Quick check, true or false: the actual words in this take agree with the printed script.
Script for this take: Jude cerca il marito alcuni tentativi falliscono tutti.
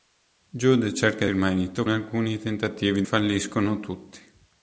true